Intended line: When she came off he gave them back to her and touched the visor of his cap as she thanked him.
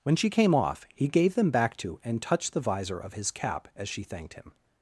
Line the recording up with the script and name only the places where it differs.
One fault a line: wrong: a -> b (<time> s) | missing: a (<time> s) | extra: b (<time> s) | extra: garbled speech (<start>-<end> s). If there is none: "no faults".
missing: her (2.0 s)